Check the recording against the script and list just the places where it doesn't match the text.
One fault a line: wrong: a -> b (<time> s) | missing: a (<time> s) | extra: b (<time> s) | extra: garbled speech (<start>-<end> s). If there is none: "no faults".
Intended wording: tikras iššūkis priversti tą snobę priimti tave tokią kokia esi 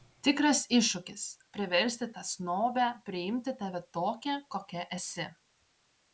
no faults